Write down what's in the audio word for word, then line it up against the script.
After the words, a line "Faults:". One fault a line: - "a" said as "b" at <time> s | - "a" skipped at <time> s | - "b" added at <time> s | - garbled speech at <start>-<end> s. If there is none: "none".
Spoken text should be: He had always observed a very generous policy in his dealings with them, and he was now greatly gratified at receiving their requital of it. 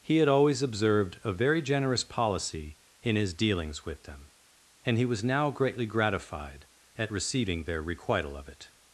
He had always observed a very generous policy in his dealings with them, and he was now greatly gratified at receiving their requital of it.
Faults:
none